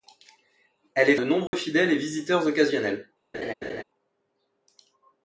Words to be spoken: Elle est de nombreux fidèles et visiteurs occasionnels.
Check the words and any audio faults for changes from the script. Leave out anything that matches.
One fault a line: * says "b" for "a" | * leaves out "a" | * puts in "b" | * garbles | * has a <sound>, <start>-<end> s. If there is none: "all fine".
* has a dropout, 1.5-1.5 s
* has a laugh, 3.3-3.8 s